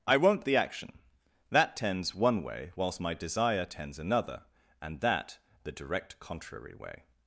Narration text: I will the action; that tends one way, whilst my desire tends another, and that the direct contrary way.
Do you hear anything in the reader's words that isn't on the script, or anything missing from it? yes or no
yes